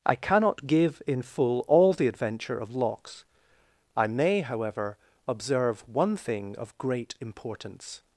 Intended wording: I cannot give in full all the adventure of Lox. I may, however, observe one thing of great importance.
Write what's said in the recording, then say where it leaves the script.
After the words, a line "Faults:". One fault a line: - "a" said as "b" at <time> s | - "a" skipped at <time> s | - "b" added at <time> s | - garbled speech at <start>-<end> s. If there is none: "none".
I cannot give in full all the adventure of Lox. I may, however, observe one thing of great importance.
Faults:
none